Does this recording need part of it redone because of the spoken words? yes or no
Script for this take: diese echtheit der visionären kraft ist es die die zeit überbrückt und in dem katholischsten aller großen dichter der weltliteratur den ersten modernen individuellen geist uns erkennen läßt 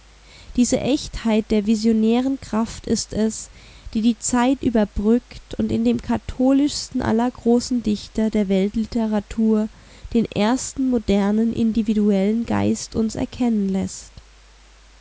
no